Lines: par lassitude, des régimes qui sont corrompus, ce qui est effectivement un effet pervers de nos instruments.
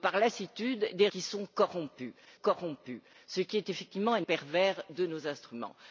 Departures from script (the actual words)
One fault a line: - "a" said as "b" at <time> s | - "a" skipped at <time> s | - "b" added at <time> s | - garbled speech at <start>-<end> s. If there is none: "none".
- "régimes" skipped at 1.1 s
- "corrompus" added at 2.3 s
- "effet" skipped at 4.2 s